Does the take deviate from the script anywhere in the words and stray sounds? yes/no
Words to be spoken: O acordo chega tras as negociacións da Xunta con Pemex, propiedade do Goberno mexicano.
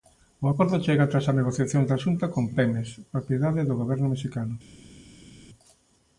no